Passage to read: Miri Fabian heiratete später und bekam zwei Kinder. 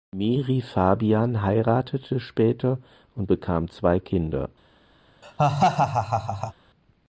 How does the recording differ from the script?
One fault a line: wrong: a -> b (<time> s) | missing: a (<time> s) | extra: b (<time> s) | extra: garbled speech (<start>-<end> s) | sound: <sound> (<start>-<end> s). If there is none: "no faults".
sound: laugh (5.2-6.5 s)